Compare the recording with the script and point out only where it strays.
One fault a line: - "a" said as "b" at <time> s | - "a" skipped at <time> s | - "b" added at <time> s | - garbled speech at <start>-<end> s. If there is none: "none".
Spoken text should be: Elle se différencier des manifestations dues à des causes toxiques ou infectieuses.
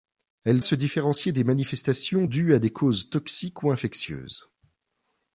none